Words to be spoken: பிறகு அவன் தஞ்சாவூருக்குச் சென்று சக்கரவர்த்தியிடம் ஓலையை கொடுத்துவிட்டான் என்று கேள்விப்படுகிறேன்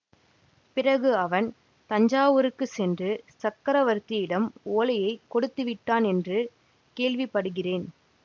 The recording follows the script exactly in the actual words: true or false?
true